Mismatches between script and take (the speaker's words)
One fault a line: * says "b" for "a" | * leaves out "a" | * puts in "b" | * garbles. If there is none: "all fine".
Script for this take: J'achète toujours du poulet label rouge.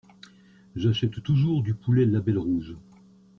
all fine